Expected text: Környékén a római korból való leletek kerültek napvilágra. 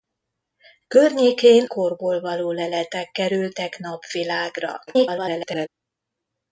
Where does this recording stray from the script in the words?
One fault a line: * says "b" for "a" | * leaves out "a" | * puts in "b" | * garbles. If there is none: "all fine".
* leaves out "a római"
* garbles